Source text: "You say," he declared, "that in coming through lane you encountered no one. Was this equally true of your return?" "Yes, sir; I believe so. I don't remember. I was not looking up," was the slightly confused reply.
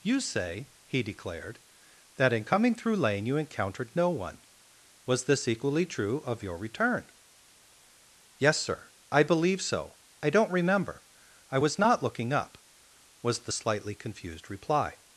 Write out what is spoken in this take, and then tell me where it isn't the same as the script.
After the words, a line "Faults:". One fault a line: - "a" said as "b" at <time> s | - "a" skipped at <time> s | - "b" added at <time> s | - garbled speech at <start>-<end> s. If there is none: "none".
"You say," he declared, "that in coming through lane you encountered no one. Was this equally true of your return?" "Yes, sir; I believe so. I don't remember. I was not looking up," was the slightly confused reply.
Faults:
none